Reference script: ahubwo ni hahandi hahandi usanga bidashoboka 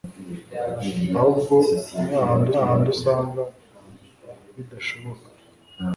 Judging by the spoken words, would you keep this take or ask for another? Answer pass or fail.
pass